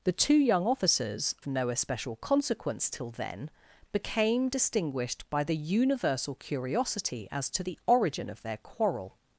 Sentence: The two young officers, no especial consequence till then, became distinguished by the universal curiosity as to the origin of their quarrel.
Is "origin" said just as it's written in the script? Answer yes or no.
yes